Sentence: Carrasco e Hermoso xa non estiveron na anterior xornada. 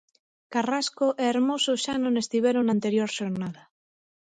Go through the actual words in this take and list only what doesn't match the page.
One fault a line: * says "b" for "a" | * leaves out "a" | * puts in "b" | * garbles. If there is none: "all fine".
all fine